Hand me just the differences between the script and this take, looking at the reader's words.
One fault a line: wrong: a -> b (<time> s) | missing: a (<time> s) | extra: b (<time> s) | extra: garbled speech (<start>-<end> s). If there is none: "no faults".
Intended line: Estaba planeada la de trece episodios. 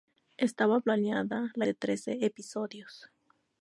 no faults